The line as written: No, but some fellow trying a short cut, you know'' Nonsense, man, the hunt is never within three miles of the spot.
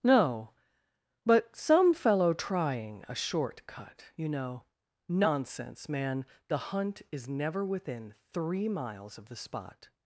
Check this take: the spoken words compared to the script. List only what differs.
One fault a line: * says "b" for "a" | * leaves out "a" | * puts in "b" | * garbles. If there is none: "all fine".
all fine